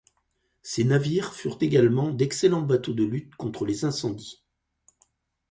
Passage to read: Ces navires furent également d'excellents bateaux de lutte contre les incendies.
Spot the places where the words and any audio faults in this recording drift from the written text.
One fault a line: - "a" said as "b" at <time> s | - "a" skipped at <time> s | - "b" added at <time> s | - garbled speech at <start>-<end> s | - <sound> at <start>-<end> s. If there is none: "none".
none